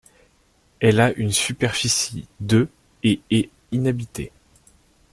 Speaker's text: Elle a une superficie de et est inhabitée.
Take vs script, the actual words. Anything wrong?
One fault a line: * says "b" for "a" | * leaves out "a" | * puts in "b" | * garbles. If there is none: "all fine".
all fine